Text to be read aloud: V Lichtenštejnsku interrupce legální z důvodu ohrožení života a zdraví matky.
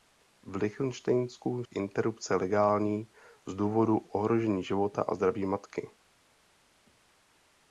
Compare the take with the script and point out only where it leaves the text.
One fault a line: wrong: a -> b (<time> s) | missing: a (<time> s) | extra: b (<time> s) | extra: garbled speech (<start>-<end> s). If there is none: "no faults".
no faults